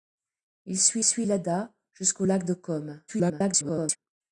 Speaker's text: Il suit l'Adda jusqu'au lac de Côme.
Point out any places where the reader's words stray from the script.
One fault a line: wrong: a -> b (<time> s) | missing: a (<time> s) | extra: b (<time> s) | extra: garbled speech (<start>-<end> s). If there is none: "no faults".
extra: suit (1.0 s)
extra: garbled speech (3.1-4.0 s)